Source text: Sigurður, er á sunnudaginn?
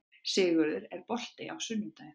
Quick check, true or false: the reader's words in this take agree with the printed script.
false